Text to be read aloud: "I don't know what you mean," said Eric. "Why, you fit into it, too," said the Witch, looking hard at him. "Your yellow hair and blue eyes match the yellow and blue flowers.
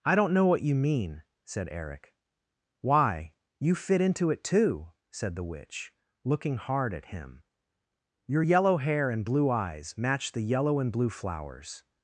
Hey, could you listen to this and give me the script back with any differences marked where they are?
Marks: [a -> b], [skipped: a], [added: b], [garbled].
"I don't know what you mean," said Eric. "Why, you fit into it, too," said the Witch, looking hard at him. "Your yellow hair and blue eyes match the yellow and blue flowers.